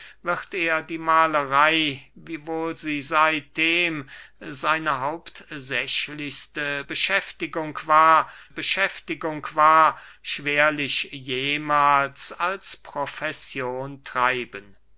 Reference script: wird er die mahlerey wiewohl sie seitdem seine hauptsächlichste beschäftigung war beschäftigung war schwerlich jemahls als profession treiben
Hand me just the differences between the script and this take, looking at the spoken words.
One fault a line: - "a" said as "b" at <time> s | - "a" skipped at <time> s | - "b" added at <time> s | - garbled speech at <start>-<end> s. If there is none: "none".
none